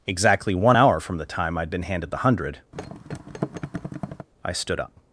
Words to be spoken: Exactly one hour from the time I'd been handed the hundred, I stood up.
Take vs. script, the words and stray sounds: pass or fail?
fail